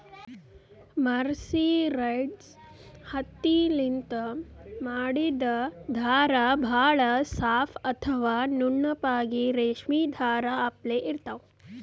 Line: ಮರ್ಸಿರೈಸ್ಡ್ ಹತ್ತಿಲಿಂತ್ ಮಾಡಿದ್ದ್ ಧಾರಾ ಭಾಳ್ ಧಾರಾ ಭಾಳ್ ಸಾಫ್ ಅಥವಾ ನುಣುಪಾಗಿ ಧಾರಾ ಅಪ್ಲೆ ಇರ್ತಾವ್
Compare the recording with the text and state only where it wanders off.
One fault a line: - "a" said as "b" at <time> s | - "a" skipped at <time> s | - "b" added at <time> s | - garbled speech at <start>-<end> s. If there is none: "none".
- "ಧಾರಾ ಭಾಳ್" skipped at 7.0 s
- "ರೇಶ್ಮಿ" added at 9.6 s